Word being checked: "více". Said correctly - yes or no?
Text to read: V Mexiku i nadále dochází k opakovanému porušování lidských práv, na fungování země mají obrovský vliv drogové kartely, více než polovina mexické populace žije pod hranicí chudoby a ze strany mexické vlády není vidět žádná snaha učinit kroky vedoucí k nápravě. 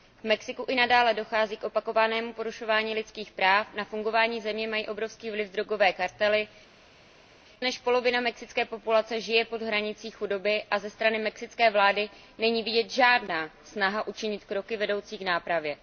no